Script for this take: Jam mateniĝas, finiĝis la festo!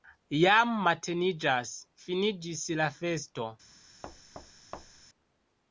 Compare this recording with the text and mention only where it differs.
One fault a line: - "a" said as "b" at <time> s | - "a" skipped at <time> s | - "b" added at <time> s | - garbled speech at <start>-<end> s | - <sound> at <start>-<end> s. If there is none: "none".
- thud at 4.0-5.1 s